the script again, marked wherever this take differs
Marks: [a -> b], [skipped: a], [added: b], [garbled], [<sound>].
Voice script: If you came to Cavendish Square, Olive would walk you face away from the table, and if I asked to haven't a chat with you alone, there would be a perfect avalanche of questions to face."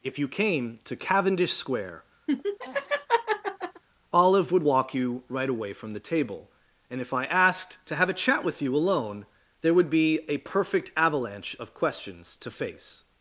If you came to Cavendish Square, [laugh] Olive would walk you [face -> right] away from the table, and if I asked to [haven't -> have] a chat with you alone, there would be a perfect avalanche of questions to face."